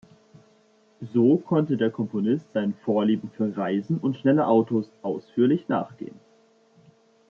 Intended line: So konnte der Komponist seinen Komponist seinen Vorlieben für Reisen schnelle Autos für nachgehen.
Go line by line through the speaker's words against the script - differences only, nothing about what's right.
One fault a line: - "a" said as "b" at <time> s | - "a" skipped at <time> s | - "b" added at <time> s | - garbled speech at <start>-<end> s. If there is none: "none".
- "Komponist seinen" skipped at 2.7 s
- "und" added at 4.0 s
- "für" said as "ausführlich" at 5.0 s